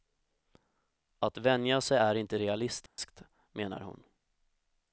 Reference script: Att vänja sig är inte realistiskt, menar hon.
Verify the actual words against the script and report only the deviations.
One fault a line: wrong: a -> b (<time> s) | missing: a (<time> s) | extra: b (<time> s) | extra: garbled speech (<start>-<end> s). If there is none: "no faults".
no faults